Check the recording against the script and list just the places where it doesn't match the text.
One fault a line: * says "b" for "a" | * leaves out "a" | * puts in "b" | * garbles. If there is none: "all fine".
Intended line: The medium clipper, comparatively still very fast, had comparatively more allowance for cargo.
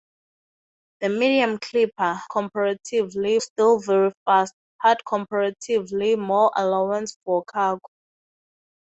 all fine